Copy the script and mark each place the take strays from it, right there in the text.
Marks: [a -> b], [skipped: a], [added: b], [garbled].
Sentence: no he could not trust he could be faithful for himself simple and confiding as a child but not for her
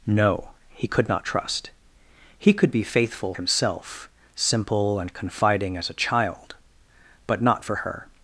no he could not trust he could be faithful [skipped: for] himself simple and confiding as a child but not for her